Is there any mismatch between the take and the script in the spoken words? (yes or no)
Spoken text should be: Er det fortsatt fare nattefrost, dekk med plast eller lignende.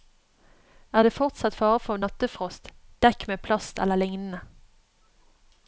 yes